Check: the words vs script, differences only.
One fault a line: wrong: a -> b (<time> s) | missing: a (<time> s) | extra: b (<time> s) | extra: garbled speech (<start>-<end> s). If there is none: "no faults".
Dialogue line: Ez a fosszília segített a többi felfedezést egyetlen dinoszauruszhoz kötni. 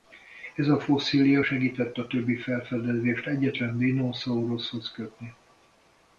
no faults